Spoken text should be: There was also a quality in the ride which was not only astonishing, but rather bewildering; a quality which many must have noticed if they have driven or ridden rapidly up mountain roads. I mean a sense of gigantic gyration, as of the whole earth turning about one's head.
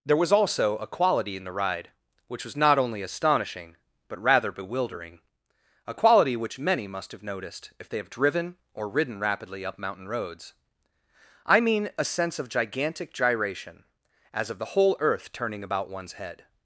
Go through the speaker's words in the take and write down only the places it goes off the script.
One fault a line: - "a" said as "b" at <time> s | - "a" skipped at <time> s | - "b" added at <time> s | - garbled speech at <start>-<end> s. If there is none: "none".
none